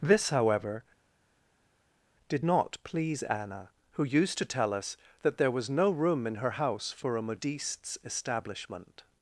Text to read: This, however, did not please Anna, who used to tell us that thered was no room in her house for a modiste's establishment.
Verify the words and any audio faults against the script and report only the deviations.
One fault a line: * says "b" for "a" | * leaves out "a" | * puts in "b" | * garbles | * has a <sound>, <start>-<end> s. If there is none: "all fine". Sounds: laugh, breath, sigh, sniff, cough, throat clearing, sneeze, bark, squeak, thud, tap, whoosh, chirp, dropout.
* says "there" for "thered"